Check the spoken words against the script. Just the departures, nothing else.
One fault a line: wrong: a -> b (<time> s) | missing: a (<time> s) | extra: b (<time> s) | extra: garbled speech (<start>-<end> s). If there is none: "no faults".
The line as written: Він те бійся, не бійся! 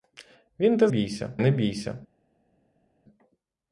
no faults